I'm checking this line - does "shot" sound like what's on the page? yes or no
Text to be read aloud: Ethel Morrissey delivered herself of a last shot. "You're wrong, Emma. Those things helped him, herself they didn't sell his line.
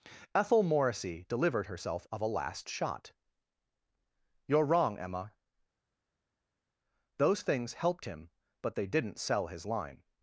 yes